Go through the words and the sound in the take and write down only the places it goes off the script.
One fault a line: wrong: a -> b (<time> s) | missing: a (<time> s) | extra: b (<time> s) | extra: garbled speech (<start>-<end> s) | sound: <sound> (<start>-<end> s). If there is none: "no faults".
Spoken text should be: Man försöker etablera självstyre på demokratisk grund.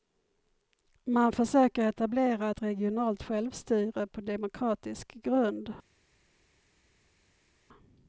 extra: ett regionalt (2.5 s)